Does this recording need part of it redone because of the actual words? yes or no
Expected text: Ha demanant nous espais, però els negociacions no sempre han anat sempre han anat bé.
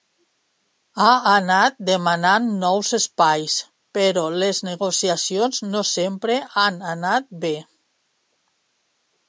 yes